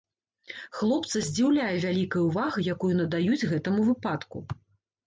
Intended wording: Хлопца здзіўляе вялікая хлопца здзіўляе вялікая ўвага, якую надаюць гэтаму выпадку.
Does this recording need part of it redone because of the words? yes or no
yes